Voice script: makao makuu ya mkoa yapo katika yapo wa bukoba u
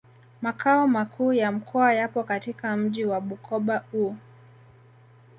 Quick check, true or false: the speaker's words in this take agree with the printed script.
false